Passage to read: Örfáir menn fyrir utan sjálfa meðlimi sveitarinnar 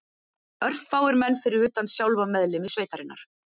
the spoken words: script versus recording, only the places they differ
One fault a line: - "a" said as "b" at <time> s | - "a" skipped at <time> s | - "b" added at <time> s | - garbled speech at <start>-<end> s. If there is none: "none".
none